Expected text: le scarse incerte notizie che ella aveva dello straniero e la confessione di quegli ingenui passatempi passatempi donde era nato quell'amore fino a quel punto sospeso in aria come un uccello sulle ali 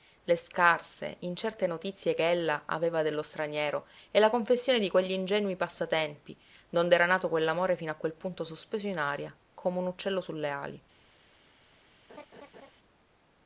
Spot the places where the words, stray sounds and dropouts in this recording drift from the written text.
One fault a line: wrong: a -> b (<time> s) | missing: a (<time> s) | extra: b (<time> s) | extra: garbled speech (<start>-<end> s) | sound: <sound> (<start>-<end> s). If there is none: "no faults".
missing: passatempi (6.4 s)
sound: laugh (12.1-12.7 s)